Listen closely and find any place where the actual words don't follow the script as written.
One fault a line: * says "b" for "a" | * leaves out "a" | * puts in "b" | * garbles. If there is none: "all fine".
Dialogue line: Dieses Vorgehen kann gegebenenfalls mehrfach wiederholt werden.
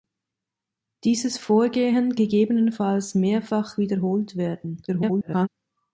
* leaves out "kann"
* garbles